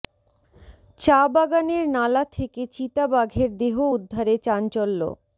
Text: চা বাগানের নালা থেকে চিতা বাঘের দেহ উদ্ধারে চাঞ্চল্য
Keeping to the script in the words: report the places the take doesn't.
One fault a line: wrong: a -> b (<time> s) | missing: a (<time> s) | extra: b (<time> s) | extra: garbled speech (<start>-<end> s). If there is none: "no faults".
no faults